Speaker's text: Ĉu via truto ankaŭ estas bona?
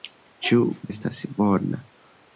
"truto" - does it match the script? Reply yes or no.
no